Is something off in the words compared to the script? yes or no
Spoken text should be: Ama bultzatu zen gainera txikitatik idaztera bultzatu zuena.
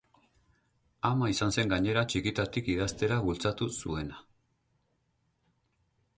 yes